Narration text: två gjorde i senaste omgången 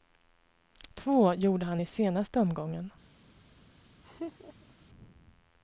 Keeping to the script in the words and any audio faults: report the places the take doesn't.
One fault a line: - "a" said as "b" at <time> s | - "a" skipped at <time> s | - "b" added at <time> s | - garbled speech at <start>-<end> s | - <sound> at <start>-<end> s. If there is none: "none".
- "han" added at 1.6 s
- laugh at 4.0-4.7 s